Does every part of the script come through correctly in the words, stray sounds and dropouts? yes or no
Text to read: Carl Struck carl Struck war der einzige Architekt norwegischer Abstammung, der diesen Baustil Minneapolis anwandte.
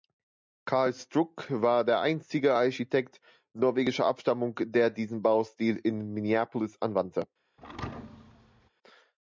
no